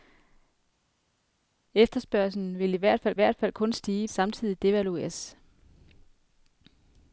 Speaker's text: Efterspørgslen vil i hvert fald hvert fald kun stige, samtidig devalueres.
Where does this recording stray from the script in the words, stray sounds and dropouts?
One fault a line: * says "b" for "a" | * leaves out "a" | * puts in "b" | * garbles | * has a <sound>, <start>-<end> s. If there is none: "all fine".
all fine